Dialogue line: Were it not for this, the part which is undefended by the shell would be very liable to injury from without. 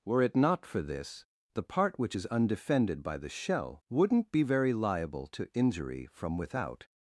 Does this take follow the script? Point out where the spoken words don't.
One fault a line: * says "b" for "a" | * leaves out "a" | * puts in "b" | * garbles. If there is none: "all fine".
* says "wouldn't" for "would"